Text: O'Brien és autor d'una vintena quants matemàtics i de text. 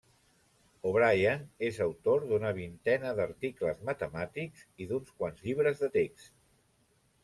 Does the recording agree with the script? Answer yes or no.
no